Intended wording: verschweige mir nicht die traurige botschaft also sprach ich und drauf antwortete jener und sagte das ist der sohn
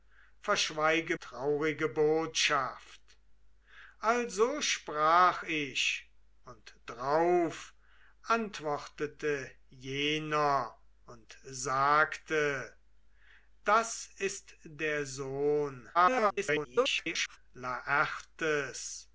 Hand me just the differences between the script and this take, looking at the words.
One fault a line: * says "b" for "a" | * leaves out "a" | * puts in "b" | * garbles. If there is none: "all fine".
* leaves out "mir nicht die"
* garbles